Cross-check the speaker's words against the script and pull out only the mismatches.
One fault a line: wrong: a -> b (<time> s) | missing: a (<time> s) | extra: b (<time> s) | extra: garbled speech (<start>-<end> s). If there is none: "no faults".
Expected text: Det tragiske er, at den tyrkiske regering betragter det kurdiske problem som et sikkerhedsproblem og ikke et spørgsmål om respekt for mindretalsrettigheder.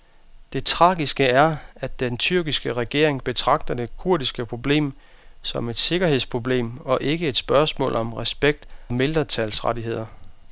missing: for (8.7 s)